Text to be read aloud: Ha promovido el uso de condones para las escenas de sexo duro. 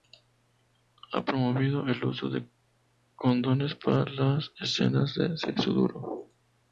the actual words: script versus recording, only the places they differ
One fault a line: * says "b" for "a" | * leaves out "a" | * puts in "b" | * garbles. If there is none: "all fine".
all fine